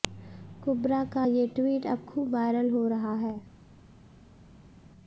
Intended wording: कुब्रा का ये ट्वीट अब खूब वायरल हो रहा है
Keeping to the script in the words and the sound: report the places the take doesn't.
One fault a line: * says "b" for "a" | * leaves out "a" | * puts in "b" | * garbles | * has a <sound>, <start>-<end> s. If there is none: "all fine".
all fine